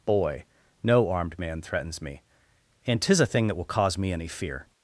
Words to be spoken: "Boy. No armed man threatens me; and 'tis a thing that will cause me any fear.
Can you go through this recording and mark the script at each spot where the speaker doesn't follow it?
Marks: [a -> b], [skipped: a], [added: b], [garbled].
"Boy. No armed man threatens me; and 'tis a thing that will cause me any fear.